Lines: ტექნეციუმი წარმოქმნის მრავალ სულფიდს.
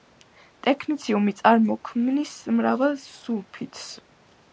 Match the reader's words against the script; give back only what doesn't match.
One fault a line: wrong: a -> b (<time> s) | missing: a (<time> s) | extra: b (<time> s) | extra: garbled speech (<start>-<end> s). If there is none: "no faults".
no faults